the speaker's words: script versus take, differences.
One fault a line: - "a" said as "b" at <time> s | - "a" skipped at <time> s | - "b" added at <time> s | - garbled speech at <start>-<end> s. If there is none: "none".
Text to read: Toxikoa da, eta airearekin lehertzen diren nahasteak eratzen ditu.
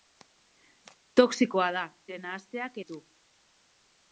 - "eta airearekin lehertzen" skipped at 1.8 s
- "eratzen" skipped at 2.8 s